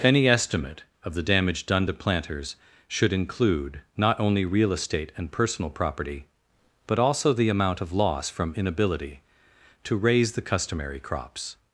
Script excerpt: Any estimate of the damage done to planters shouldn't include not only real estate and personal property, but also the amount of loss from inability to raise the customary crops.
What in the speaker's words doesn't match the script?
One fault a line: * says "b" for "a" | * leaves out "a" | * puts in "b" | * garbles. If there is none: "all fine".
* says "should" for "shouldn't"